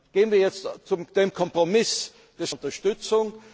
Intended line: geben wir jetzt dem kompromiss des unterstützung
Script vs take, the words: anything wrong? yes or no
no